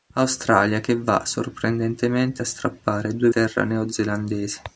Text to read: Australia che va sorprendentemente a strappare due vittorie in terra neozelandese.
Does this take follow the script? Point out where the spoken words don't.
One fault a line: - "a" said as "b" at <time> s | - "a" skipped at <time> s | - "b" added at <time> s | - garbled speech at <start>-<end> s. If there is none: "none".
- "vittorie in" skipped at 3.3 s